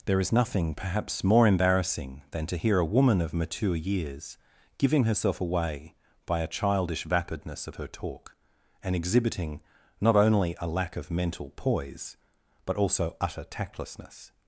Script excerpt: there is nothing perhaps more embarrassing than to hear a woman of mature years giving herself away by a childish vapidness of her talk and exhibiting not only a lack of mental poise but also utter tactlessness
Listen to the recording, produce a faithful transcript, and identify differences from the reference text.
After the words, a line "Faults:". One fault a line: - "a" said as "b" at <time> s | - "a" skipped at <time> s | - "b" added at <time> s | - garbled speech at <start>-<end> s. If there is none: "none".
there is nothing perhaps more embarrassing than to hear a woman of mature years giving herself away by a childish vapidness of her talk and exhibiting not only a lack of mental poise but also utter tactlessness
Faults:
none